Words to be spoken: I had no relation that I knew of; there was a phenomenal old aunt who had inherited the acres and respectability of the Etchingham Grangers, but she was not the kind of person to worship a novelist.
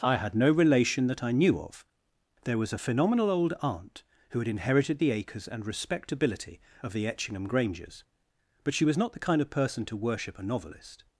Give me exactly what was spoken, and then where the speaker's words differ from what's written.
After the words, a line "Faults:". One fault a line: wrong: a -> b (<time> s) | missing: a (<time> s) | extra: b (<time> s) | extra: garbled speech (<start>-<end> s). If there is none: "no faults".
I had no relation that I knew of; there was a phenomenal old aunt who had inherited the acres and respectability of the Etchingham Grangers, but she was not the kind of person to worship a novelist.
Faults:
no faults